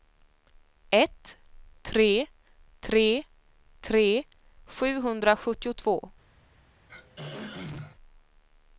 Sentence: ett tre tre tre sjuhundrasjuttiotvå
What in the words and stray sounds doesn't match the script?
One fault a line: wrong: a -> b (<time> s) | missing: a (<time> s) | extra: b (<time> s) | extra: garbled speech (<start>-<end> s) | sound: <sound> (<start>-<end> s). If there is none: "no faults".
sound: throat clearing (6.9-8.0 s)